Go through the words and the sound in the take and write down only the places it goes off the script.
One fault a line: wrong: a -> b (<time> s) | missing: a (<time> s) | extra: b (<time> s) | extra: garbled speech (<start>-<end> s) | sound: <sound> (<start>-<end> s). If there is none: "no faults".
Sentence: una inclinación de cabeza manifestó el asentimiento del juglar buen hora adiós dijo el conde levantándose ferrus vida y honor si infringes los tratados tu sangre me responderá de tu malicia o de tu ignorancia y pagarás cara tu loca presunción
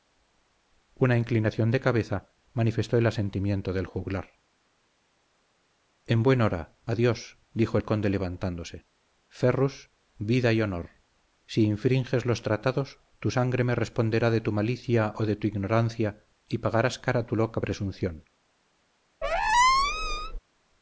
extra: en (6.1 s)
sound: squeak (19.2-20.4 s)